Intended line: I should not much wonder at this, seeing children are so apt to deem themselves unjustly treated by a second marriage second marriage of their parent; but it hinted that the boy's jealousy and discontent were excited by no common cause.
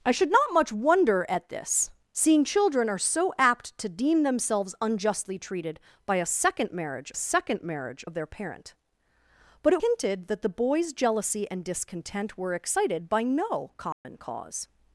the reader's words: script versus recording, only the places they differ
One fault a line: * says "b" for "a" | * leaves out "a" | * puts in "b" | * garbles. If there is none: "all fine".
all fine